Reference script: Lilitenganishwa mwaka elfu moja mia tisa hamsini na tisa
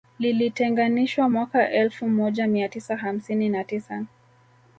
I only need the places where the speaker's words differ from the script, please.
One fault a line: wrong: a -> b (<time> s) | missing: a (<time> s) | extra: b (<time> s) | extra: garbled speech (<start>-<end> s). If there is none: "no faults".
no faults